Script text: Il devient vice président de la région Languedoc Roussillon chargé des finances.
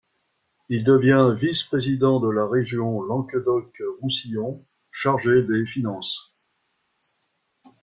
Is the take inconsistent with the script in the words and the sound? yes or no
no